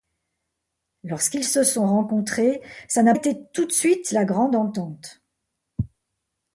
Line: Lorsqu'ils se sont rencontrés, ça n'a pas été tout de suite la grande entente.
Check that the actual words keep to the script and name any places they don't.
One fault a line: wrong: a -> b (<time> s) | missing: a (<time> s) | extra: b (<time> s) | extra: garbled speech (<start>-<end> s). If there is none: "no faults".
missing: pas (3.1 s)